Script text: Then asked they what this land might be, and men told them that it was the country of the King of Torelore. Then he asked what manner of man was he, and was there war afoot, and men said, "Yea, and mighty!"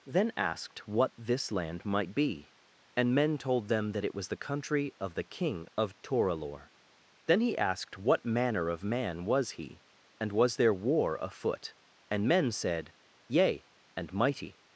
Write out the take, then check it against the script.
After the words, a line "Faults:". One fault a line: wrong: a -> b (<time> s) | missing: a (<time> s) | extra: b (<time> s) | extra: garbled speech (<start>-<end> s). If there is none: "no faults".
Then asked what this land might be, and men told them that it was the country of the King of Torelore. Then he asked what manner of man was he, and was there war afoot, and men said, "Yea, and mighty!"
Faults:
missing: they (0.9 s)